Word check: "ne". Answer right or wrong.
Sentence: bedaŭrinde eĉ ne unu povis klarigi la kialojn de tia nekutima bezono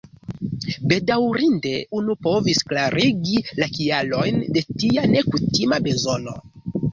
wrong